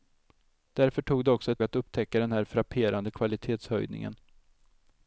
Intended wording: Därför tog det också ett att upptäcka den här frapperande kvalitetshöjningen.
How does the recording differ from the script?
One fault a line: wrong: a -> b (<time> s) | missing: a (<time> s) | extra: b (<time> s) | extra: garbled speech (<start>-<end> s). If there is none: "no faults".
no faults